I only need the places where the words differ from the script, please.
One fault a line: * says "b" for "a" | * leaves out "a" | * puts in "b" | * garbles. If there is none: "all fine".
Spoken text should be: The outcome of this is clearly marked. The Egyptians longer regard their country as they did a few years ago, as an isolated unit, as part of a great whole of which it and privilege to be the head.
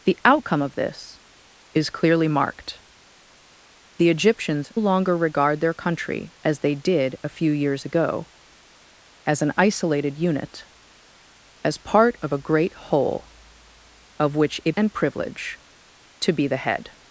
all fine